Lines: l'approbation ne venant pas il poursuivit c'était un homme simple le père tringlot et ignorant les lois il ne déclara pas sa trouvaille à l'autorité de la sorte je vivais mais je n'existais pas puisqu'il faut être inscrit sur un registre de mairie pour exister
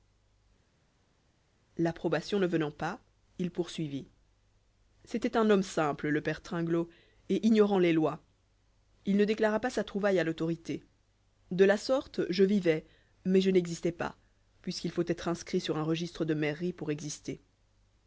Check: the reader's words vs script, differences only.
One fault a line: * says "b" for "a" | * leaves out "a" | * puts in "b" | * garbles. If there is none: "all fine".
all fine